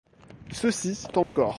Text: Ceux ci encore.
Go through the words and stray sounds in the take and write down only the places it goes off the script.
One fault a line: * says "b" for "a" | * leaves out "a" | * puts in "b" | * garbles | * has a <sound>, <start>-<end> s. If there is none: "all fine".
* has a dropout, 1.2-1.4 s